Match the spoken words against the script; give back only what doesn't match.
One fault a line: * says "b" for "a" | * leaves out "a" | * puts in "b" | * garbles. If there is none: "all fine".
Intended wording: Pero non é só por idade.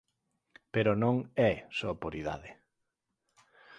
all fine